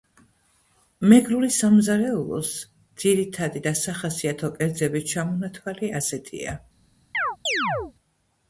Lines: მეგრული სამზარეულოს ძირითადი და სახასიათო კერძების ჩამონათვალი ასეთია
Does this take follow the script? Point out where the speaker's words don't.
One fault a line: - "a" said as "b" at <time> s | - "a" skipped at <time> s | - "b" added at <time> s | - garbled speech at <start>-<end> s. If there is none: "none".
none